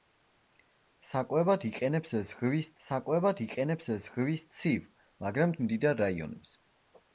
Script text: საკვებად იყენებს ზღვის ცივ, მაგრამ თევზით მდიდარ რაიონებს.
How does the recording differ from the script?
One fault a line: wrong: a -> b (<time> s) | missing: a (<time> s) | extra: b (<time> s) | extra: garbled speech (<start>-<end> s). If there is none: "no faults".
extra: საკვებად იყენებს ზღვის (2.9 s)
missing: თევზით (5.5 s)